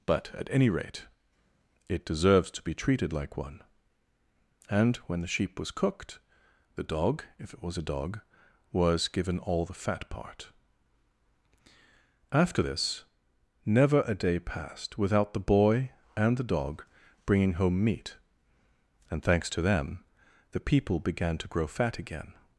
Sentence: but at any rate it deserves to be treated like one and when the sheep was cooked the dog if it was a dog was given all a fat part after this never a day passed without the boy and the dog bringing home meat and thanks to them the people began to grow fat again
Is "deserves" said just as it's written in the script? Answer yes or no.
yes